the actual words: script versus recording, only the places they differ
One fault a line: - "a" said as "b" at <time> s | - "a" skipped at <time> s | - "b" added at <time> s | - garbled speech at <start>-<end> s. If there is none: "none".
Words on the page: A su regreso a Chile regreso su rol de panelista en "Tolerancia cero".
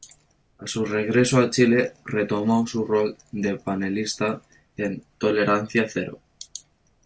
- "regreso" said as "retomó" at 2.0 s